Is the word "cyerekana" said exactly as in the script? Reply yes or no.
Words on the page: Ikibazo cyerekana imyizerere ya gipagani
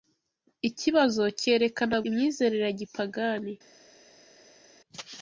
yes